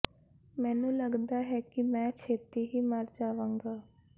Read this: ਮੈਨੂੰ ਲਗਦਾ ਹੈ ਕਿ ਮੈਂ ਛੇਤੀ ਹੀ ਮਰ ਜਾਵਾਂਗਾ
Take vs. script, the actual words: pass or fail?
pass